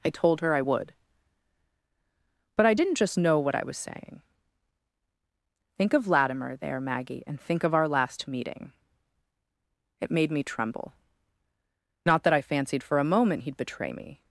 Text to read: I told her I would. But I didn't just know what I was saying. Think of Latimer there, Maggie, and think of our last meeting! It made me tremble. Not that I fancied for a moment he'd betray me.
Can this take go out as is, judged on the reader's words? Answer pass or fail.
pass